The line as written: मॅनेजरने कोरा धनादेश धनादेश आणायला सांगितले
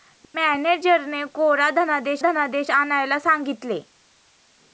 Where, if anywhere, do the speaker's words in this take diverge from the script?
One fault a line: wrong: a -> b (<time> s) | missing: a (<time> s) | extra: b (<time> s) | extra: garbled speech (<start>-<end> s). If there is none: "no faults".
no faults